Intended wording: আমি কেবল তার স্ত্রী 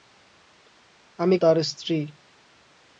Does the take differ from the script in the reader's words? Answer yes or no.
yes